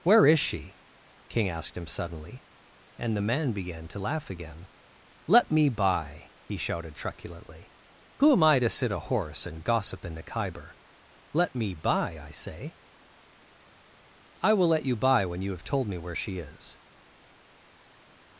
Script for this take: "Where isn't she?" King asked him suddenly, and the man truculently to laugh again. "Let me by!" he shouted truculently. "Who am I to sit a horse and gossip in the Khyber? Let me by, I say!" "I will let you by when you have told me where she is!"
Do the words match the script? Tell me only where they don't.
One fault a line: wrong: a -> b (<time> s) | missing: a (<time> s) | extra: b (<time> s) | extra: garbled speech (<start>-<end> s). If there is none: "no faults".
wrong: isn't -> is (0.2 s)
wrong: truculently -> began (3.5 s)